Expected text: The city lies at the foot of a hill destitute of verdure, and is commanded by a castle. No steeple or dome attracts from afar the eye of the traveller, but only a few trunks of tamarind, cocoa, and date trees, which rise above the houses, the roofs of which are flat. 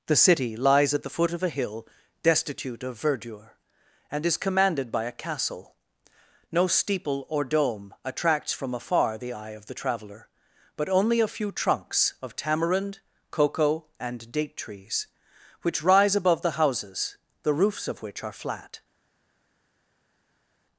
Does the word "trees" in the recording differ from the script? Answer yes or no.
no